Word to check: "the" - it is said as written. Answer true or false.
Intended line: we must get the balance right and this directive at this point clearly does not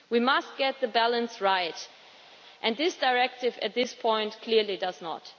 true